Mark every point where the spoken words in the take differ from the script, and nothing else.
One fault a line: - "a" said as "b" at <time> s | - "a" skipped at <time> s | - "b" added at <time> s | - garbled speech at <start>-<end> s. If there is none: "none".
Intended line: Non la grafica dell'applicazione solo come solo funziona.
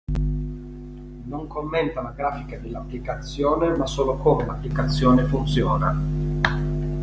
- "commenta" added at 1.4 s
- "ma" added at 3.7 s
- "solo" said as "l'applicazione" at 4.4 s